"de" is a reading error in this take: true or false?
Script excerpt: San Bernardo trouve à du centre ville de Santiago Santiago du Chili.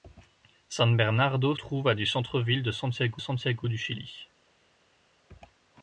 false